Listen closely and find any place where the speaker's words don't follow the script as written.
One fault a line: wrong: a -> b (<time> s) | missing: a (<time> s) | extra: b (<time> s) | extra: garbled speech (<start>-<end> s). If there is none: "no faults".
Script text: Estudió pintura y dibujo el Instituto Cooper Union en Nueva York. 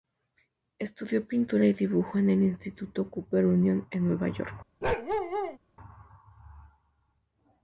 extra: en (2.2 s)